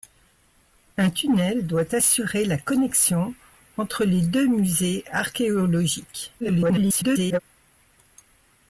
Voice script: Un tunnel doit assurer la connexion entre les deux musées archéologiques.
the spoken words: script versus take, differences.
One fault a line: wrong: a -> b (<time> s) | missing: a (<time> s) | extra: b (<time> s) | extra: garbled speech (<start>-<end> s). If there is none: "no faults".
extra: garbled speech (6.4-7.4 s)